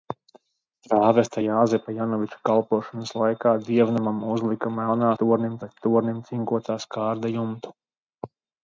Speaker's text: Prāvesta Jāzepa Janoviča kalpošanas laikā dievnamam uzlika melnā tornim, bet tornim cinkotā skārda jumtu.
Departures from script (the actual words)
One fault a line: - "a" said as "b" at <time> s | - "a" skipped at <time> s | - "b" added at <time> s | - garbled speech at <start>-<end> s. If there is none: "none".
none